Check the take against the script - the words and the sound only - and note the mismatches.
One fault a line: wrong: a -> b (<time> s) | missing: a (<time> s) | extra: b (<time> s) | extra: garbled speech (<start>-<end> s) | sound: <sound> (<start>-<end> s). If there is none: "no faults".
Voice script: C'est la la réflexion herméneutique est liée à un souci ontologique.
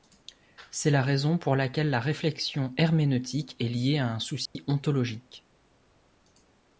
extra: raison pour laquelle (1.0 s)
sound: dropout (4.5-4.6 s)